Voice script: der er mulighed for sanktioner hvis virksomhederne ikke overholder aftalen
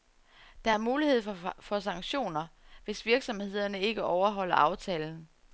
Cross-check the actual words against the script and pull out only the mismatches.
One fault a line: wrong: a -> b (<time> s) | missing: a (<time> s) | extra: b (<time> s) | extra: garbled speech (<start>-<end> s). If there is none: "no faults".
no faults